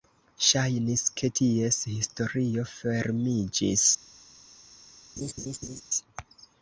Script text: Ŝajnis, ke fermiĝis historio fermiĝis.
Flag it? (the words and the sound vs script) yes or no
yes